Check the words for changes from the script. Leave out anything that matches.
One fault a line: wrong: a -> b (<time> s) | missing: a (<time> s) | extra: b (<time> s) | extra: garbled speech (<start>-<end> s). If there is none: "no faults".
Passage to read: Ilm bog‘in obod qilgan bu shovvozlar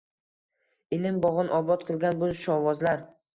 no faults